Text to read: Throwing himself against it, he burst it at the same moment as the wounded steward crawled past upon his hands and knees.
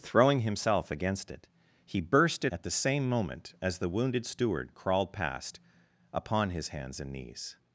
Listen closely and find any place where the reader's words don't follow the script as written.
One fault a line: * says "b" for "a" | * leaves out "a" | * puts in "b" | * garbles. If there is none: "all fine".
all fine